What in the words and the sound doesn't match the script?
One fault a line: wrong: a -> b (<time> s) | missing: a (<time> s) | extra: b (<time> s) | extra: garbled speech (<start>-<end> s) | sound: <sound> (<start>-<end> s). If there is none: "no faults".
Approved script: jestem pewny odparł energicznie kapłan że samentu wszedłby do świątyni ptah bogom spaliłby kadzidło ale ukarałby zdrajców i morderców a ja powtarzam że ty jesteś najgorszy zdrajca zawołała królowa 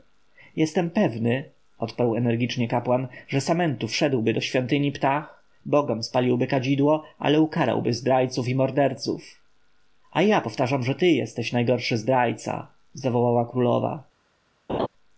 sound: laugh (14.7-14.9 s)